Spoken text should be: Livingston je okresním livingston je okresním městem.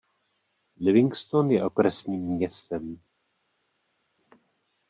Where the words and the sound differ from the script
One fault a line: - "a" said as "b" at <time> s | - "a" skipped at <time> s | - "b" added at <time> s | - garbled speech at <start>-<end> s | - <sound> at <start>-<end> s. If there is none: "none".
- "livingston je okresním" skipped at 2.2 s